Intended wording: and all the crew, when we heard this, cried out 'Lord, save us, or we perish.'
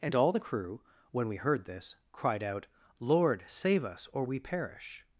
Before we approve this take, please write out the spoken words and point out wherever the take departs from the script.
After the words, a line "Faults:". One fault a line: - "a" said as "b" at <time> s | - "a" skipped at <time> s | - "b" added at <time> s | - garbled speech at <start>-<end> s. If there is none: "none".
and all the crew, when we heard this, cried out 'Lord, save us, or we perish.'
Faults:
none